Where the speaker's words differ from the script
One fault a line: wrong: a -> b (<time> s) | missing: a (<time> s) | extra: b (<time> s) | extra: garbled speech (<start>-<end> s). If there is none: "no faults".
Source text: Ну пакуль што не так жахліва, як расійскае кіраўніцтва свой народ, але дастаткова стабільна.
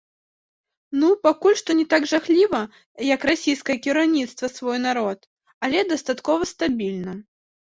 no faults